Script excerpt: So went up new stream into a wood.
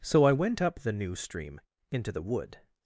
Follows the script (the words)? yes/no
no